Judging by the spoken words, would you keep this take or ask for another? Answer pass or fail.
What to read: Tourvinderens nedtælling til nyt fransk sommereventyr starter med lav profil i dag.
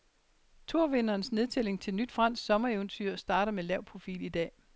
pass